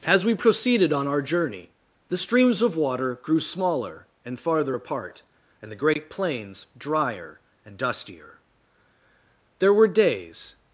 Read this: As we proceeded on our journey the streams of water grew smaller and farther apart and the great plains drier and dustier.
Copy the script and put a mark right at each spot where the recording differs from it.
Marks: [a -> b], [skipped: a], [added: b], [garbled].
As we proceeded on our journey the streams of water grew smaller and farther apart and the great plains drier and dustier. [added: There were days]